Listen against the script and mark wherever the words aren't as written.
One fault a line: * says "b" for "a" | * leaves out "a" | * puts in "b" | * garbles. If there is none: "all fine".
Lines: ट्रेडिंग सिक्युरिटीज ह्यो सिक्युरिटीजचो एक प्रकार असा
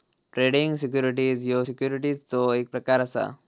all fine